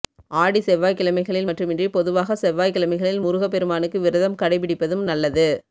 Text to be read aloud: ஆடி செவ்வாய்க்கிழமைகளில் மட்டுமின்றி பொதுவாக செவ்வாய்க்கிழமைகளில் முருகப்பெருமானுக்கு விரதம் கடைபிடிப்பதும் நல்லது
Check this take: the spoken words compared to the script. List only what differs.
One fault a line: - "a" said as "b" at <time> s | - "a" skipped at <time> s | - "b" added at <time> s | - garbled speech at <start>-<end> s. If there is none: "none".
none